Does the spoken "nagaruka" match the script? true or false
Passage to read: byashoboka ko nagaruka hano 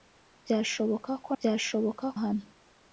false